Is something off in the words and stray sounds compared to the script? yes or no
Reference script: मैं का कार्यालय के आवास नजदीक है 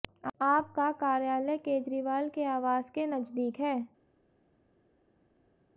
yes